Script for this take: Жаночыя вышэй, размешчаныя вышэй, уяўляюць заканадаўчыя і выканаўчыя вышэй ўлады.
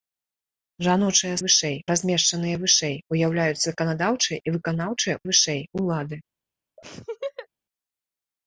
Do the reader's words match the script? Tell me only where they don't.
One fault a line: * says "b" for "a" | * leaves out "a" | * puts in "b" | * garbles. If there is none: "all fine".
all fine